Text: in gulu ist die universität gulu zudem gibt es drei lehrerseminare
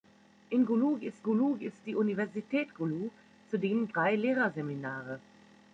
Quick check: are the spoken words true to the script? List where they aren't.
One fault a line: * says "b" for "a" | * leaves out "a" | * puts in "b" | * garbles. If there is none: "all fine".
* puts in "gulu ist"
* leaves out "gibt es"